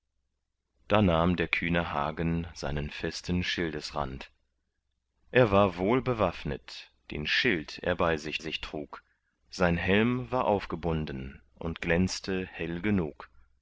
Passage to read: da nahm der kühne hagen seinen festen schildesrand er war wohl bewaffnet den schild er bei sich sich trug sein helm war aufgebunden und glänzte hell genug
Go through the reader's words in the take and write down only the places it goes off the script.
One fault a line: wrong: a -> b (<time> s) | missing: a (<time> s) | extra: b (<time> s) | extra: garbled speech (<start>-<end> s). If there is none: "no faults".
no faults